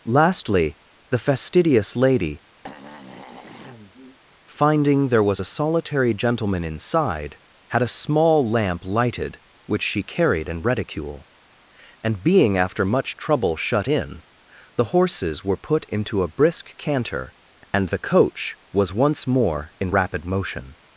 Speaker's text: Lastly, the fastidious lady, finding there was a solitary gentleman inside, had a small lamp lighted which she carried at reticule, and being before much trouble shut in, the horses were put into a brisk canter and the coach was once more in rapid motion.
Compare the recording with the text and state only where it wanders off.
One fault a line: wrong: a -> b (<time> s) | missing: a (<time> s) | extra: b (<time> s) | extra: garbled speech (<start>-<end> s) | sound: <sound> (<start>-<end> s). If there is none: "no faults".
sound: throat clearing (2.6-4.2 s)
wrong: at -> in (10.5 s)
wrong: before -> after (12.6 s)